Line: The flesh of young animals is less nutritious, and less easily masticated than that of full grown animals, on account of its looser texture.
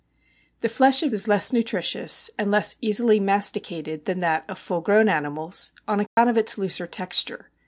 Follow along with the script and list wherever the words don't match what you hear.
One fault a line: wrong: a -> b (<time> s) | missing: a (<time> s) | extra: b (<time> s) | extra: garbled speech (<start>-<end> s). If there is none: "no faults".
missing: young animals (1.1 s)